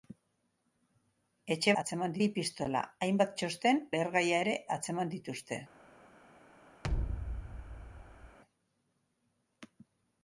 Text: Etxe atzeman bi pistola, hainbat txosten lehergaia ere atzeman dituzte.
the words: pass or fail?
pass